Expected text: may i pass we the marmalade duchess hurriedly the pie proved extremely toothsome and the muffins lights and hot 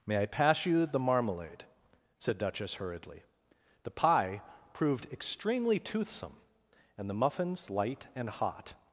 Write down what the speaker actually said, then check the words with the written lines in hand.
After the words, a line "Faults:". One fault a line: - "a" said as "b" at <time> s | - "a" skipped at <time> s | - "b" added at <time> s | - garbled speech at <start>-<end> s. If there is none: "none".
may i pass you the marmalade said duchess hurriedly the pie proved extremely toothsome and the muffins light and hot
Faults:
- "we" said as "you" at 0.7 s
- "said" added at 2.2 s
- "lights" said as "light" at 7.7 s